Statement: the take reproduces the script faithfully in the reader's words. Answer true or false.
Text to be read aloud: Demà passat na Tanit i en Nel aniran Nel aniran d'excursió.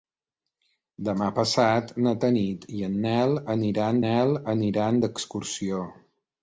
true